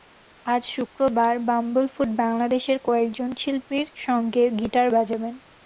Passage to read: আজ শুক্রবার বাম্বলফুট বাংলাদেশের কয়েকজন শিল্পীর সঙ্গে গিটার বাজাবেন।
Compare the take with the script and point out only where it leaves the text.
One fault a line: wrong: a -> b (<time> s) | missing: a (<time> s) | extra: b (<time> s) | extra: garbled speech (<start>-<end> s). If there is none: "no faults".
no faults